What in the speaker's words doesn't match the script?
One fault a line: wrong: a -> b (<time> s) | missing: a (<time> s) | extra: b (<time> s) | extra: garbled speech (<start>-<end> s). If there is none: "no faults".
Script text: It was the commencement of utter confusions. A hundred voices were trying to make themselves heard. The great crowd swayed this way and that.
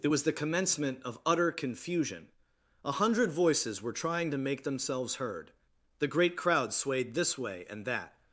wrong: confusions -> confusion (1.5 s)